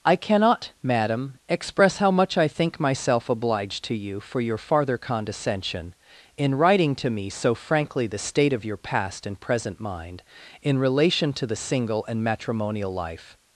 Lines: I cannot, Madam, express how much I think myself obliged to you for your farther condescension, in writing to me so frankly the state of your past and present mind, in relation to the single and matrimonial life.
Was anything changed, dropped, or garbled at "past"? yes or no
no